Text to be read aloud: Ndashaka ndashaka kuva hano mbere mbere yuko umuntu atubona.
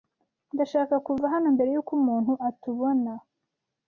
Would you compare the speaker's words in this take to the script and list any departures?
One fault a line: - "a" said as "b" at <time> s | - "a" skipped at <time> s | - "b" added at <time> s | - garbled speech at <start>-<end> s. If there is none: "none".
- "ndashaka" skipped at 0.9 s
- "mbere" skipped at 1.7 s